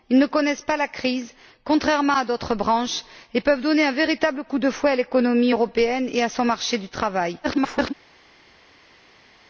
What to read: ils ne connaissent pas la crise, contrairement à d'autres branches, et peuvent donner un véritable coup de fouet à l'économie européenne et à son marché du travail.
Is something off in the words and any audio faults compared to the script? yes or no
yes